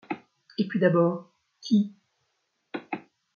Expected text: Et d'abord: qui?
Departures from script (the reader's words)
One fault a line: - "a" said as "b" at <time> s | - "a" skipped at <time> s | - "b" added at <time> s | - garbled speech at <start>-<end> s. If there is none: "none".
- "puis" added at 0.7 s